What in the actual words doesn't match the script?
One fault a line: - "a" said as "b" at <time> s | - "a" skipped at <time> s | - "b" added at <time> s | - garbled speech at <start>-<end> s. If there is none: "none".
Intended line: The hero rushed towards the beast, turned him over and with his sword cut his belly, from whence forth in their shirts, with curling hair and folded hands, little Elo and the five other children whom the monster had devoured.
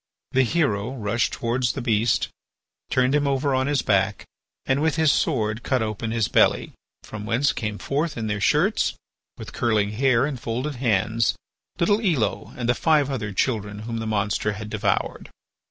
- "on his back" added at 3.5 s
- "open" added at 5.8 s
- "came" added at 7.5 s